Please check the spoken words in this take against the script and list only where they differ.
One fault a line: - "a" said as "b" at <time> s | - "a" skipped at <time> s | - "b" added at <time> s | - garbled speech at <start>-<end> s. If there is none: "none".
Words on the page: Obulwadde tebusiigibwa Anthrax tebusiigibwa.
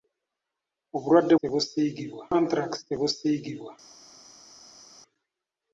none